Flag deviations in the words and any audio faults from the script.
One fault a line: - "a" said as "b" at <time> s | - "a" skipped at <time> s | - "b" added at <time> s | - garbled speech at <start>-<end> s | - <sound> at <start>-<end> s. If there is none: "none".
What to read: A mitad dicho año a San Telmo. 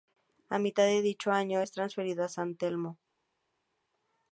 - "de" added at 0.8 s
- "es transferido" added at 1.6 s